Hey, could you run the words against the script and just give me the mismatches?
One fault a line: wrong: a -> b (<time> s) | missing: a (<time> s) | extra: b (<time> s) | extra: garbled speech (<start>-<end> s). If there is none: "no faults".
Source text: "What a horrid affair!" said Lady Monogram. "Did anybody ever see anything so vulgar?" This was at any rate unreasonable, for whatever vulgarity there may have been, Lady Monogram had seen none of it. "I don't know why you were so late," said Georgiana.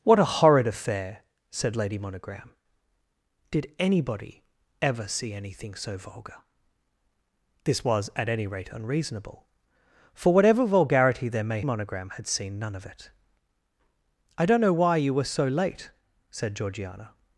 missing: have been Lady (11.6 s)